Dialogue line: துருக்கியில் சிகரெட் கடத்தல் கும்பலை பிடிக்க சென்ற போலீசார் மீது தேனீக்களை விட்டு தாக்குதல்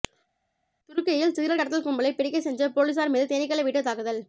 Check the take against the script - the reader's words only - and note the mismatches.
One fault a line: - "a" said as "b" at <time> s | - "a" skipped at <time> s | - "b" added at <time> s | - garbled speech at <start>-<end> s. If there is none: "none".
none